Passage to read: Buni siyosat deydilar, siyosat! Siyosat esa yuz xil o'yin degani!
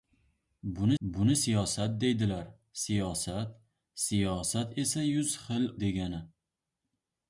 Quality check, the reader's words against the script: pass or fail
fail